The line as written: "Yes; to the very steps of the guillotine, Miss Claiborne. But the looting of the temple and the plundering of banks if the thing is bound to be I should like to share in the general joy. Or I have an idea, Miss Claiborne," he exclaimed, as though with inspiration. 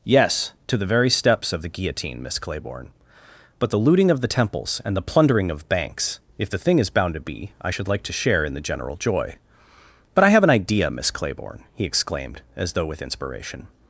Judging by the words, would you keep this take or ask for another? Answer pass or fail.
fail